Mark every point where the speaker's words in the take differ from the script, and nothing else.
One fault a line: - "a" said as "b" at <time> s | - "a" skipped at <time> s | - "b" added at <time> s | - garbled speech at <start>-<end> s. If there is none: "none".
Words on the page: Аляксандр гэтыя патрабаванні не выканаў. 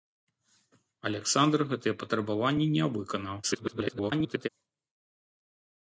- garbled speech at 3.4-4.5 s